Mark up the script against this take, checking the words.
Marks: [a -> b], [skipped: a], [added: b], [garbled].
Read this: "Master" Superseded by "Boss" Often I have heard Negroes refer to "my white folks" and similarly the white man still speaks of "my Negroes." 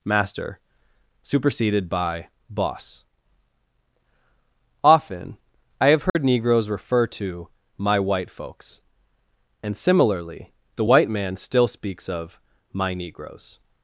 "Master" Superseded by "Boss" Often I have heard Negroes refer to "my white folks" and similarly the white man still speaks of "my Negroes."